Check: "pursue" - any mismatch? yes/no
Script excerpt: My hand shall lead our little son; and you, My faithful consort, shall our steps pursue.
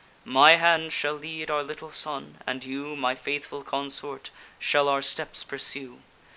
no